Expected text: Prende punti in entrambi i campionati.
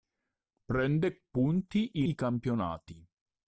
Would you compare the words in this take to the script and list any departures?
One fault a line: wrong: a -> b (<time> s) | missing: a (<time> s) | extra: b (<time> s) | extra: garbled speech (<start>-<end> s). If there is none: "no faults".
missing: in entrambi (2.0 s)